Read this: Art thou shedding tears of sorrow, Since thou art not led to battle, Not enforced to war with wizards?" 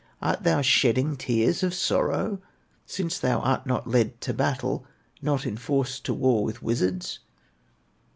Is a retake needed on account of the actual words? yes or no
no